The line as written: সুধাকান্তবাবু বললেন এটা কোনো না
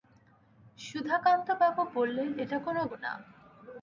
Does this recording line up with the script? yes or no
yes